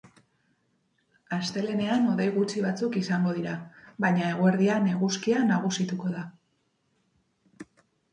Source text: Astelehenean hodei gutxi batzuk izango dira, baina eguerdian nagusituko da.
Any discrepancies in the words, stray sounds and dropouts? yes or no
yes